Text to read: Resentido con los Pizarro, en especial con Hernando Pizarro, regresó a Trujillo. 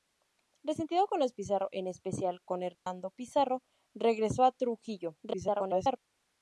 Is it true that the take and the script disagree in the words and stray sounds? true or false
true